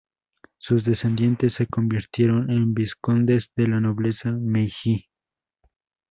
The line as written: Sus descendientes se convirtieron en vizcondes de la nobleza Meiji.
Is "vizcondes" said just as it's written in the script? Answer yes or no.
yes